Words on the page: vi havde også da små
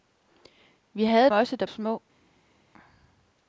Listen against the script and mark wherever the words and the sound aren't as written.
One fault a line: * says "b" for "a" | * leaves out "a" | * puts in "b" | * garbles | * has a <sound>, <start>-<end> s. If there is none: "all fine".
all fine